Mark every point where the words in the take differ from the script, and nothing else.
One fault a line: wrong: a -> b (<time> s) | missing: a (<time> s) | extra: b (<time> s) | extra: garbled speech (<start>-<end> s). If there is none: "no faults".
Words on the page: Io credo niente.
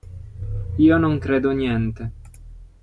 extra: non (1.0 s)